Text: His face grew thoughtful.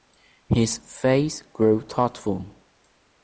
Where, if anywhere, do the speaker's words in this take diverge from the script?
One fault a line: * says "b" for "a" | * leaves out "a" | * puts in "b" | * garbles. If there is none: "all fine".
all fine